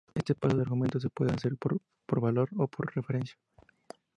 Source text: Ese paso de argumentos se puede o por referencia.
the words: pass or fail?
fail